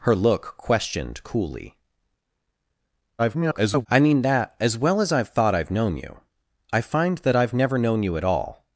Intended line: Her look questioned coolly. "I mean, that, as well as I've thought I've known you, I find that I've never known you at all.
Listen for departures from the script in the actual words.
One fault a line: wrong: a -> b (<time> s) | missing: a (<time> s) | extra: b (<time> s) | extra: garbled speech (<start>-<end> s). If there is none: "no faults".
extra: garbled speech (3.2-3.9 s)